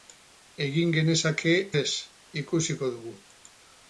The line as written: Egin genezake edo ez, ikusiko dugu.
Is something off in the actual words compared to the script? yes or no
yes